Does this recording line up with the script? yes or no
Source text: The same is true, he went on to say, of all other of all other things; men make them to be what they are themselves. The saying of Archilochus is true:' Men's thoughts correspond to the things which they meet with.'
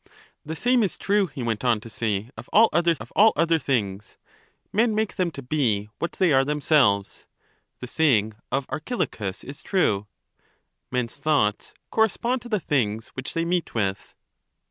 yes